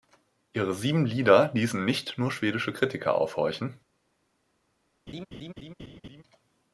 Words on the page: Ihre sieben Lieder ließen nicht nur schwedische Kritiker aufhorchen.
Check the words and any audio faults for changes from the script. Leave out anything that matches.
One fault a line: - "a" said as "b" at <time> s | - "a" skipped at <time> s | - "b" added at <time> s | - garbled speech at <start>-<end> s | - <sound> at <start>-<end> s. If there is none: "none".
- laugh at 5.1-6.2 s